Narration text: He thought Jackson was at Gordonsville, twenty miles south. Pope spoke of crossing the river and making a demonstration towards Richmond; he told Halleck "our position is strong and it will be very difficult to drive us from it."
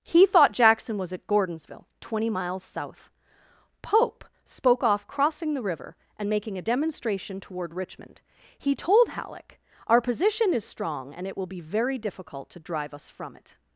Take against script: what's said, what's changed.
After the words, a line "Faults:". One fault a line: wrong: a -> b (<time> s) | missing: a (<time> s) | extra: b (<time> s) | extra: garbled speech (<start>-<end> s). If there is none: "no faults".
He thought Jackson was at Gordonsville, twenty miles south. Pope spoke off crossing the river and making a demonstration toward Richmond; he told Halleck "our position is strong and it will be very difficult to drive us from it."
Faults:
wrong: of -> off (4.8 s)
wrong: towards -> toward (7.4 s)